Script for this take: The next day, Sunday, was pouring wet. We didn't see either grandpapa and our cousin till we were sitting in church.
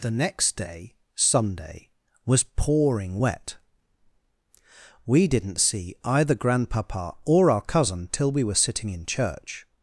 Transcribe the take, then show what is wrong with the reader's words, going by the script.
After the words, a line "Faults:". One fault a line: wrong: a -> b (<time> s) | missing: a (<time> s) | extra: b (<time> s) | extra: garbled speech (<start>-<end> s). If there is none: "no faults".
The next day, Sunday, was pouring wet. We didn't see either grandpapa or our cousin till we were sitting in church.
Faults:
wrong: and -> or (7.2 s)